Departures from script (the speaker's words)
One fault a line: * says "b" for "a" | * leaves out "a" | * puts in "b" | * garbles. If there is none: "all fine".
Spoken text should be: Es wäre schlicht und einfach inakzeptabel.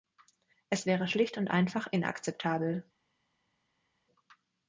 all fine